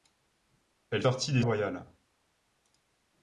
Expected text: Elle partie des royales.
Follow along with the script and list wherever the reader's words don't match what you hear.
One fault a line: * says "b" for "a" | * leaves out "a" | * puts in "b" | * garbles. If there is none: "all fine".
all fine